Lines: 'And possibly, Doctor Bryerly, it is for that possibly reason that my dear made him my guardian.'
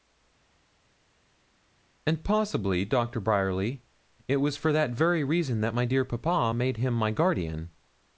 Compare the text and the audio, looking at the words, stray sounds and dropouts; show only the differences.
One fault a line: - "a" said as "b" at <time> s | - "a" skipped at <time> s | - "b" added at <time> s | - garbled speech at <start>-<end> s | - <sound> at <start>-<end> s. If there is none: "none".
- "is" said as "was" at 4.4 s
- "possibly" said as "very" at 4.9 s
- "papa" added at 6.1 s